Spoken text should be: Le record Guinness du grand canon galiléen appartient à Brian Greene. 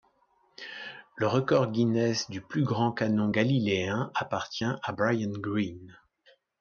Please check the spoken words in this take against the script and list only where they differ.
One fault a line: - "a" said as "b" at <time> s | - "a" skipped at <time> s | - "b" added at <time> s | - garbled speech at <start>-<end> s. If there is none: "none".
- "plus" added at 2.4 s